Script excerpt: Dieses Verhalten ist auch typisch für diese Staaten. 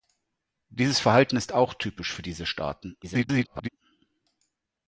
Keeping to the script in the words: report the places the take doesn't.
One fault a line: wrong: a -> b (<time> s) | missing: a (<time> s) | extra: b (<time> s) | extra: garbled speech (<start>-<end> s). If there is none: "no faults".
extra: garbled speech (3.0-3.7 s)